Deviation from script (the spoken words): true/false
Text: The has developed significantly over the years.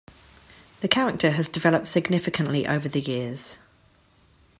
true